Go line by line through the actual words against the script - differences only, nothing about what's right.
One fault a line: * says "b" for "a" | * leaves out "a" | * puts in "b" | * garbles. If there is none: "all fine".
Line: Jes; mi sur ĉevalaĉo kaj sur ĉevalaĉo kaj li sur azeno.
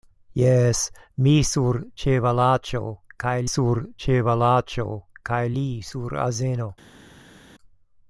all fine